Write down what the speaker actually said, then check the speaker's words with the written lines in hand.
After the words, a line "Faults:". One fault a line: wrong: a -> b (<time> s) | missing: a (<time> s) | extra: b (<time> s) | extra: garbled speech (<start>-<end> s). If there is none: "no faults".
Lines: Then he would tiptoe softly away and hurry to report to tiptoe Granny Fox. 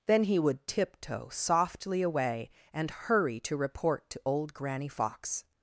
Then he would tiptoe softly away and hurry to report to old Granny Fox.
Faults:
wrong: tiptoe -> old (4.2 s)